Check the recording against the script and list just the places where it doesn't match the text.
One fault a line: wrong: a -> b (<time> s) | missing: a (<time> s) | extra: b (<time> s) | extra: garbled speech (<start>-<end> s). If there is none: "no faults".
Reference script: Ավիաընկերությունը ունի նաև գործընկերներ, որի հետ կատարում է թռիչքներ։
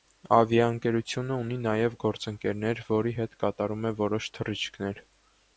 extra: որոշ (4.0 s)